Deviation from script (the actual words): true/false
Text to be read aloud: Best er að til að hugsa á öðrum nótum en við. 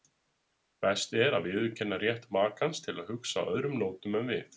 true